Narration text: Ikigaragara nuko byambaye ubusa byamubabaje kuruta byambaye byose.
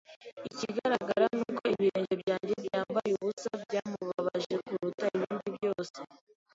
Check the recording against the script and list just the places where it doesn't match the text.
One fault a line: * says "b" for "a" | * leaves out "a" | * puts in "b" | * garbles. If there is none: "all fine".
* puts in "ibirenge byanjye"
* says "ibindi" for "byambaye"